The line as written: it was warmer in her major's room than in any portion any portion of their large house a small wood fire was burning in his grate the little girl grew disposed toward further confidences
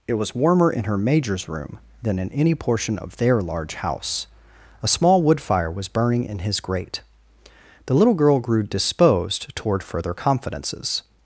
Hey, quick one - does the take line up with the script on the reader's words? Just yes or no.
no